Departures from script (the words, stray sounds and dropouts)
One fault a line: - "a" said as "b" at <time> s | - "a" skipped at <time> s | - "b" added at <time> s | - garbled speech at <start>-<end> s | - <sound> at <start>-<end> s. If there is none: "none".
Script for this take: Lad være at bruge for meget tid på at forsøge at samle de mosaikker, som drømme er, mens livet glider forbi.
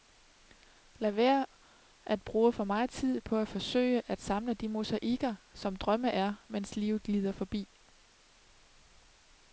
none